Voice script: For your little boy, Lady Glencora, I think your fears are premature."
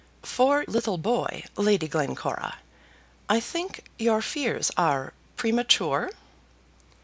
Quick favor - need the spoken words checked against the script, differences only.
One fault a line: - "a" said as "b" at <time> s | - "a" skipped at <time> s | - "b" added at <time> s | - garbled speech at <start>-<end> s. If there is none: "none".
- "your" skipped at 0.7 s